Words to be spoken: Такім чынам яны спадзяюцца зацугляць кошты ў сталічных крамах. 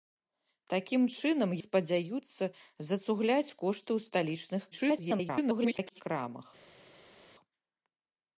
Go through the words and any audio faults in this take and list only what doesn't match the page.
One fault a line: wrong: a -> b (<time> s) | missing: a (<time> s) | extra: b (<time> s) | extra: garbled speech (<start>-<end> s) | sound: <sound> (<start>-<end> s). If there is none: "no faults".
missing: яны (1.5 s)
extra: garbled speech (4.7-6.0 s)